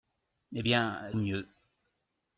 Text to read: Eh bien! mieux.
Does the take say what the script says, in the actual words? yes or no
yes